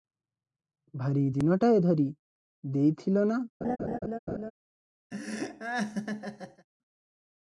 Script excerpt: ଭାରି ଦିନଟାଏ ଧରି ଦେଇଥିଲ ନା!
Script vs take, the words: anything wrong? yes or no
no